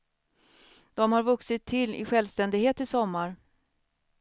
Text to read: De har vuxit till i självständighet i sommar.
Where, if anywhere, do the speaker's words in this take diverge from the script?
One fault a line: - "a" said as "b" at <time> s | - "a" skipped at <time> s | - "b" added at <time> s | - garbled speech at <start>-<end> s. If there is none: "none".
none